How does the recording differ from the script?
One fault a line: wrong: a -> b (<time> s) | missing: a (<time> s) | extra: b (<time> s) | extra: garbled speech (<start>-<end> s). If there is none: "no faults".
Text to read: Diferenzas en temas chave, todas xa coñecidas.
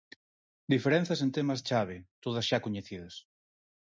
no faults